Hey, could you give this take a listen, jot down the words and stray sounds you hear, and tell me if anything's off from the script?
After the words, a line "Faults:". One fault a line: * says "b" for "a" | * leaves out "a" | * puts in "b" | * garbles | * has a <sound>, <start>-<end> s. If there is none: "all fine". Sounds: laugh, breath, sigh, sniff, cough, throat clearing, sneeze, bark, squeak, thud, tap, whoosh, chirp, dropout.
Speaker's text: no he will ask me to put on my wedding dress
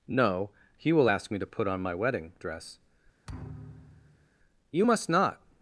no he will ask me to put on my wedding dress you must not
Faults:
* has a thud, 3.3-4.3 s
* puts in "you must not"